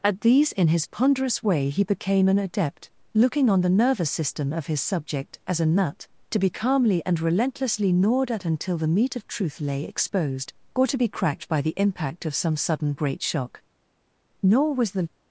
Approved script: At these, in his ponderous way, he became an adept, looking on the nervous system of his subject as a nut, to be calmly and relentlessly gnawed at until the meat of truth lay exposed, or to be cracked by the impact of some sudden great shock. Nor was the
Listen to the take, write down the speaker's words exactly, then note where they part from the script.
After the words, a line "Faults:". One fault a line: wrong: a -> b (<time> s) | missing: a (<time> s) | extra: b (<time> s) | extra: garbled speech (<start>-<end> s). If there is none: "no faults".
At these, in his ponderous way, he became an adept, looking on the nervous system of his subject as a nut, to be calmly and relentlessly gnawed at until the meat of truth lay exposed, or to be cracked by the impact of some sudden great shock. Nor was the
Faults:
no faults